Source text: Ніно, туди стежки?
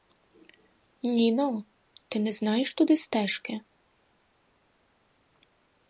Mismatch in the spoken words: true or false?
true